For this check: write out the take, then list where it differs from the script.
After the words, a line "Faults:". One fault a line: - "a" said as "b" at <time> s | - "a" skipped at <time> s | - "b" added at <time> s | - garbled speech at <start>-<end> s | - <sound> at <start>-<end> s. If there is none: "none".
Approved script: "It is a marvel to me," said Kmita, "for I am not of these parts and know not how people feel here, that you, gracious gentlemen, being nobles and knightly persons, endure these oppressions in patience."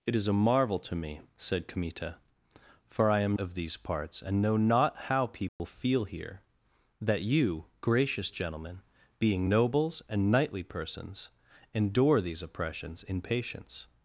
"It is a marvel to me," said Kmita, "for I am of these parts and know not how people feel here, that you, gracious gentlemen, being nobles and knightly persons, endure these oppressions in patience."
Faults:
- "not" skipped at 3.4 s
- dropout at 5.5-5.6 s